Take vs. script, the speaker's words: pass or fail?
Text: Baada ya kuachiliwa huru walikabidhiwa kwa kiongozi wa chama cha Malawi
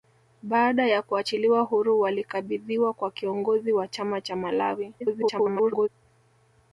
fail